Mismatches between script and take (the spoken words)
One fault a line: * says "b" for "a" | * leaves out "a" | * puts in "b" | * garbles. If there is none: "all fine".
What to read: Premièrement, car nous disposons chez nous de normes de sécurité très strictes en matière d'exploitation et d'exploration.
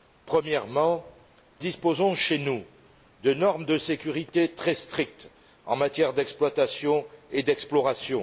* leaves out "car nous"